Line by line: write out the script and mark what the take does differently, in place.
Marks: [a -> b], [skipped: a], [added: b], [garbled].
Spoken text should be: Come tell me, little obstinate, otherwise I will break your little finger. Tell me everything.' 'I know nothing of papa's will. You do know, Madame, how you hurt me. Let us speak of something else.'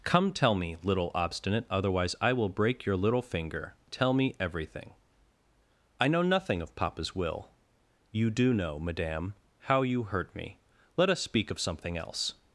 Come tell me, little obstinate, otherwise I will break your little finger. Tell me everything.' 'I know nothing of papa's will. You do know, Madame, how you hurt me. Let us speak of something else.'